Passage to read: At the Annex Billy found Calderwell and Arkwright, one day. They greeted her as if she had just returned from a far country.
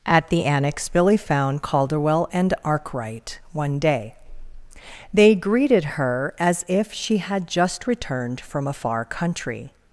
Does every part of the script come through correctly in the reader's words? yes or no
yes